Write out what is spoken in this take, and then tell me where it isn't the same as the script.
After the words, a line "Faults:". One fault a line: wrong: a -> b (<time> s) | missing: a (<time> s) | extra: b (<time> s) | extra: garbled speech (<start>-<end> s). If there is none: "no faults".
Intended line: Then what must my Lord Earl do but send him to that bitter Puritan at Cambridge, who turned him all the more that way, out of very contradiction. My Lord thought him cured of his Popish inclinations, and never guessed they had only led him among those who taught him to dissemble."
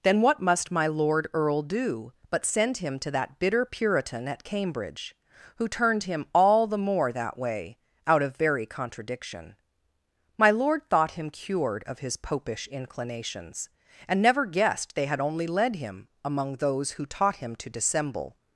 Then what must my Lord Earl do but send him to that bitter Puritan at Cambridge, who turned him all the more that way, out of very contradiction. My Lord thought him cured of his Popish inclinations, and never guessed they had only led him among those who taught him to dissemble."
Faults:
no faults